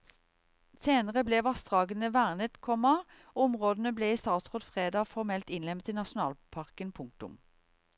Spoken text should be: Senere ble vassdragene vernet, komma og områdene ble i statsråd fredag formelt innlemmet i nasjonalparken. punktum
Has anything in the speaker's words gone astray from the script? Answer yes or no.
no